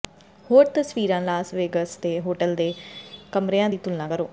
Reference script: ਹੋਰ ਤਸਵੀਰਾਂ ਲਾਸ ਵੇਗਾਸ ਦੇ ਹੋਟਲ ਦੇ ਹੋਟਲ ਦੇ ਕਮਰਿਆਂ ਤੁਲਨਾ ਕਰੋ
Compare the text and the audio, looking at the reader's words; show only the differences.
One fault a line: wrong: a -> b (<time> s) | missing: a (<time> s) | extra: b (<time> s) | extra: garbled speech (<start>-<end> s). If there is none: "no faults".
wrong: ਹੋਟਲ ਦੇ ਕਮਰਿਆਂ -> ਕਮਰਿਆਂ ਦੀ (3.3 s)